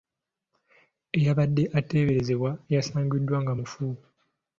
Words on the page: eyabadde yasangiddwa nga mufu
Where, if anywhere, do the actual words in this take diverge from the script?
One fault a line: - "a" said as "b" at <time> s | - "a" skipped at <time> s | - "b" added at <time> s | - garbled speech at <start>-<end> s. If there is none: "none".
- "ateeberezebwa" added at 1.8 s